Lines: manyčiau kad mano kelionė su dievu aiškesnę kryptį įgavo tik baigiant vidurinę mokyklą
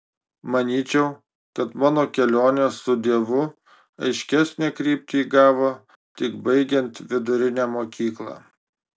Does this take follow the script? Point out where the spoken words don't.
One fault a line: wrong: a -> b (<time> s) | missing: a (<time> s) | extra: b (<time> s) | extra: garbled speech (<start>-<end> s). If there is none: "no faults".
no faults